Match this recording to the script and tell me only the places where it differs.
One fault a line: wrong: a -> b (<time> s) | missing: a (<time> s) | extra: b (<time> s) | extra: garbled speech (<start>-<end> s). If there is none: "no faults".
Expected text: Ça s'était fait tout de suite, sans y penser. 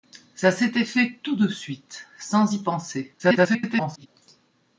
extra: garbled speech (3.2-4.1 s)